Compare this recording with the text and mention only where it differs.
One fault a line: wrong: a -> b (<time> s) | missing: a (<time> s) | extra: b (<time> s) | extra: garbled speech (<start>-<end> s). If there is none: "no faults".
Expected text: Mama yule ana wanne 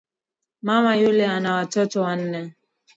extra: watoto (1.5 s)